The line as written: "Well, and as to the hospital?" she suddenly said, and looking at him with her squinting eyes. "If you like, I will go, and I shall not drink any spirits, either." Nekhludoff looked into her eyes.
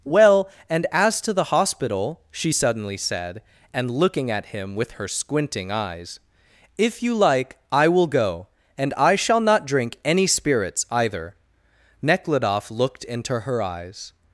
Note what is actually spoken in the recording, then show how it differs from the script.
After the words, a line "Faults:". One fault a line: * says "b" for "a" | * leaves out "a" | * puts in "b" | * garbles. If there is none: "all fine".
"Well, and as to the hospital?" she suddenly said, and looking at him with her squinting eyes. "If you like, I will go, and I shall not drink any spirits, either." Nekhludoff looked into her eyes.
Faults:
all fine